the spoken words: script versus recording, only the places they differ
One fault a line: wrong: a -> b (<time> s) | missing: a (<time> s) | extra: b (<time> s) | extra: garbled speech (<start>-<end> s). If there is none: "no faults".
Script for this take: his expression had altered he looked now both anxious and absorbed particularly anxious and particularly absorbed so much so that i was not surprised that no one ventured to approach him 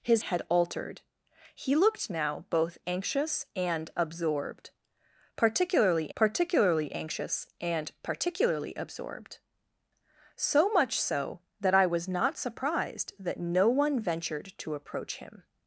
missing: expression (0.2 s)
extra: particularly (6.1 s)